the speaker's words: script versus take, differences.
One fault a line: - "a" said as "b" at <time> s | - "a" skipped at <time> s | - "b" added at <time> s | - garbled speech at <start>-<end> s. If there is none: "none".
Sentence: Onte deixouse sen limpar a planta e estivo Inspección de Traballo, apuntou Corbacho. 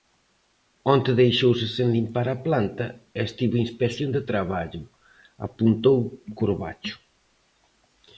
none